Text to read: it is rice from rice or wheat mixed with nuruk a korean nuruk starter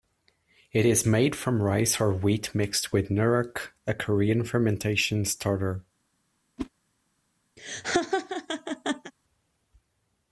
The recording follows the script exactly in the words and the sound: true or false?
false